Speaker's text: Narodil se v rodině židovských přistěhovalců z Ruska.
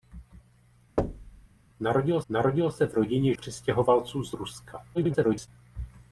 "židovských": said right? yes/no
no